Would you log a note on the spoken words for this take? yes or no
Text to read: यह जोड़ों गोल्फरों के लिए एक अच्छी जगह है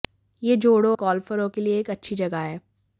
no